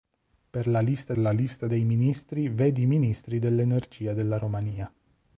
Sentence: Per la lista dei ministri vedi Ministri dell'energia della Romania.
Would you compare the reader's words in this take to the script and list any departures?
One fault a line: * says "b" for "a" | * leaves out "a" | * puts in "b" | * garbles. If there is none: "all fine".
* puts in "la lista"